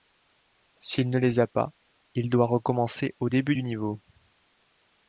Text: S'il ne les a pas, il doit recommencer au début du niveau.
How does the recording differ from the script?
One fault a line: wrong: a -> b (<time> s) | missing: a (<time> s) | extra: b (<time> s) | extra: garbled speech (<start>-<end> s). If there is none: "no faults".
no faults